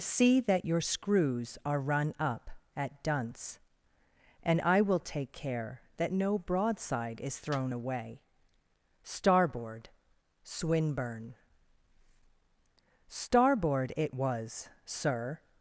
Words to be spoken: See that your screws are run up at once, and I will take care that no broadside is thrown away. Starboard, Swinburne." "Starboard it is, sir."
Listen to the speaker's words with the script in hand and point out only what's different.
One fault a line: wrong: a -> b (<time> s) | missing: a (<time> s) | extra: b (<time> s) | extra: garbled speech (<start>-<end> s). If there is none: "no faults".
wrong: once -> dunce (3.0 s)
wrong: is -> was (14.1 s)